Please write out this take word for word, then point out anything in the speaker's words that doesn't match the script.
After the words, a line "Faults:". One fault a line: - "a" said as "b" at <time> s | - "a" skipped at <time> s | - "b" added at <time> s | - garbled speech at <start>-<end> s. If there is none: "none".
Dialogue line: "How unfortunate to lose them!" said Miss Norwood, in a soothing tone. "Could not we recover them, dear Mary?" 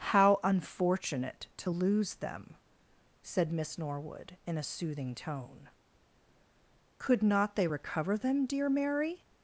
"How unfortunate to lose them!" said Miss Norwood, in a soothing tone. "Could not they recover them, dear Mary?"
Faults:
- "we" said as "they" at 7.5 s